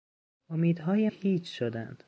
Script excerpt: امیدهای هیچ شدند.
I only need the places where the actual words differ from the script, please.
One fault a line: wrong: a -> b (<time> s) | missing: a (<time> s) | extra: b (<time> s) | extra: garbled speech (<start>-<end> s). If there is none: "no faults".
no faults